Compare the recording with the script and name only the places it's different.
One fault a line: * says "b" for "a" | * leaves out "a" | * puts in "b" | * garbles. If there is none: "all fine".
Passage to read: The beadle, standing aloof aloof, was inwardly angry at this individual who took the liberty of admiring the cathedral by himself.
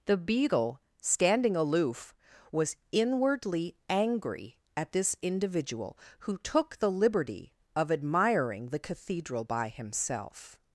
* leaves out "aloof"